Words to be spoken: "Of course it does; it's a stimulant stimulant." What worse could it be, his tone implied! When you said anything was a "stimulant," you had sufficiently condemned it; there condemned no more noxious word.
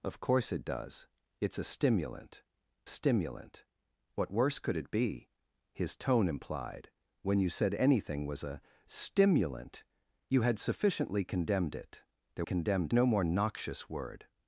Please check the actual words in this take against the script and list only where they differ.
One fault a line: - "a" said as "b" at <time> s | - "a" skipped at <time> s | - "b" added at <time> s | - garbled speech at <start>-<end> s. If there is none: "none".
none